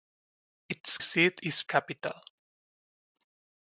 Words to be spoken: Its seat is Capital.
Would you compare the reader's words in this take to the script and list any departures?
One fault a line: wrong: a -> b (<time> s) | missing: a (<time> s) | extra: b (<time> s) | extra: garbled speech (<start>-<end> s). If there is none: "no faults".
no faults